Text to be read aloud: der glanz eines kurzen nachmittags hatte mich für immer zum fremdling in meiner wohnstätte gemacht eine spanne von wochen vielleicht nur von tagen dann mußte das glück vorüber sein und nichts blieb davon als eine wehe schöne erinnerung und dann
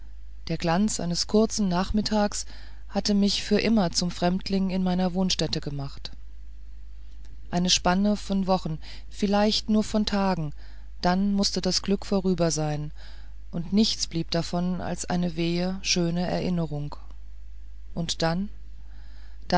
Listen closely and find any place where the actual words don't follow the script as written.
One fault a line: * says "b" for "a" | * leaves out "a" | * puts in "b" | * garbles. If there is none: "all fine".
all fine